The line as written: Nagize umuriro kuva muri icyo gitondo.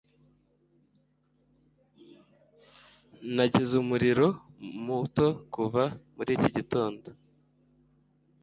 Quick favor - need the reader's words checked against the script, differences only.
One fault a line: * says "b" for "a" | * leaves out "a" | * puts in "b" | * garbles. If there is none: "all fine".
* puts in "muto"
* says "iki" for "icyo"